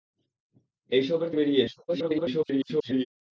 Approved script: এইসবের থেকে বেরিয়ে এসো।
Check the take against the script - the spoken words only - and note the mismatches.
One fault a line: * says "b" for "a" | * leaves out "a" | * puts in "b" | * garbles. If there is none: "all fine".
* leaves out "থেকে"
* garbles